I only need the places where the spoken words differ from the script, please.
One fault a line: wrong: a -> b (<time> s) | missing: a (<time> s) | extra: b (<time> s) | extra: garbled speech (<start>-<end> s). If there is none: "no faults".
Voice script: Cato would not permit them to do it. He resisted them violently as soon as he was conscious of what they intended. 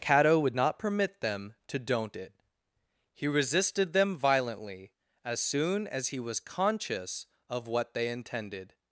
wrong: do -> don't (1.8 s)